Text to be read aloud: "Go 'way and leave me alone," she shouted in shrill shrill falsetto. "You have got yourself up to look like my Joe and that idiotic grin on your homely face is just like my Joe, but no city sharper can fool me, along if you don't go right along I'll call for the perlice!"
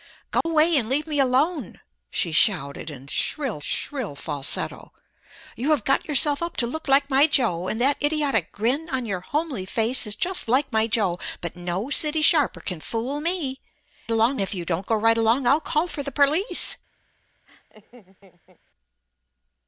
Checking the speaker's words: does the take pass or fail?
pass